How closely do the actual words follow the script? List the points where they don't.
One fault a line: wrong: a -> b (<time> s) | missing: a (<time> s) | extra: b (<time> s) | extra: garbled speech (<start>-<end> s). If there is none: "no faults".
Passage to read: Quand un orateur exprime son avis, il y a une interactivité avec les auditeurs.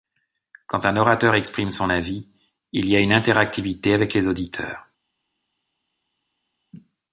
no faults